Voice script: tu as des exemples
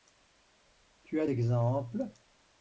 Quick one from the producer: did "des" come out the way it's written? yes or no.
no